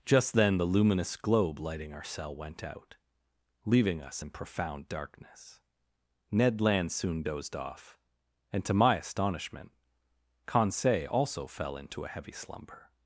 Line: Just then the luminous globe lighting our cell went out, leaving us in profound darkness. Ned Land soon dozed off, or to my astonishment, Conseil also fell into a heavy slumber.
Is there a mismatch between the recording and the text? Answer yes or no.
yes